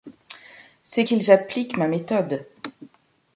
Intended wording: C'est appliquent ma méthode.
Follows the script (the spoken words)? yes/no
no